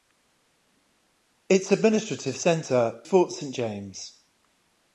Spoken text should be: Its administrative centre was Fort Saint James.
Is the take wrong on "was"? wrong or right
wrong